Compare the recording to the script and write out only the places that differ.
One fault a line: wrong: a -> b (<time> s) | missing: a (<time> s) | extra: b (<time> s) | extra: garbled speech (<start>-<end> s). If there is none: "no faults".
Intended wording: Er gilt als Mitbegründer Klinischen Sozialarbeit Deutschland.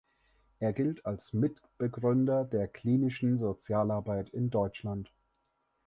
extra: der (2.4 s)
extra: in (4.3 s)